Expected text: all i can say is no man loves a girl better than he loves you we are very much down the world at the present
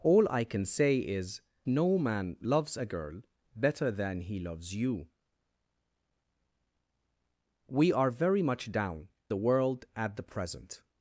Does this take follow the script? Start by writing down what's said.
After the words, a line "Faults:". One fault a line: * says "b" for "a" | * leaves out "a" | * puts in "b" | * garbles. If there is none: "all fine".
all i can say is no man loves a girl better than he loves you we are very much down the world at the present
Faults:
all fine